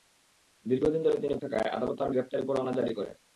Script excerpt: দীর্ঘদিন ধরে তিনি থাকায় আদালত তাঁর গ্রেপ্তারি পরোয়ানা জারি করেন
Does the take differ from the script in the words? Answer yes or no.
no